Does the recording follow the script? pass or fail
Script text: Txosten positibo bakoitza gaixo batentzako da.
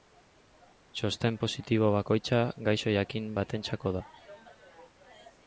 fail